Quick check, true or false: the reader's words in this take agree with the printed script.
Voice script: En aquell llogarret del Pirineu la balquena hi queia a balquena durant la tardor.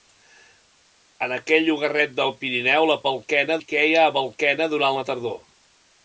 true